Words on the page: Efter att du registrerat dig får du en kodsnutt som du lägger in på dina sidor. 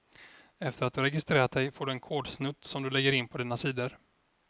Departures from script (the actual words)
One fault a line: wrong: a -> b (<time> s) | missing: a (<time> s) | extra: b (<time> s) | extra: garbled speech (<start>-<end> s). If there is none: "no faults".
no faults